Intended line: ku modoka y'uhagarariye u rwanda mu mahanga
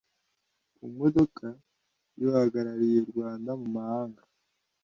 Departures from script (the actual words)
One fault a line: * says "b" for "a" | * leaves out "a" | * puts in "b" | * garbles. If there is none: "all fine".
all fine